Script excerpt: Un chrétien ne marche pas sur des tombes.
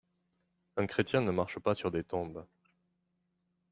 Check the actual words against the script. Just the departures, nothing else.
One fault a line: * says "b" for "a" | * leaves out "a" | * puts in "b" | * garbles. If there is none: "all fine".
all fine